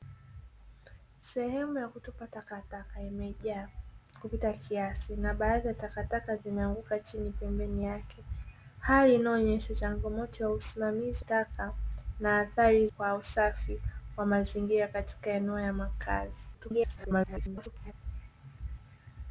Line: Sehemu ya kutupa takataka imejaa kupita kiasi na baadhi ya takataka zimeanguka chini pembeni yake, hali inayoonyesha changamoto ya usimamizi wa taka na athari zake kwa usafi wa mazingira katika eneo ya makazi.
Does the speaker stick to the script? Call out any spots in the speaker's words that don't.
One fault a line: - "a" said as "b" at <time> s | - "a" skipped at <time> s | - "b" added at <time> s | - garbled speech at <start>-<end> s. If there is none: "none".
- "wa" skipped at 11.2 s
- "zake" skipped at 12.9 s
- garbled speech at 16.5-17.9 s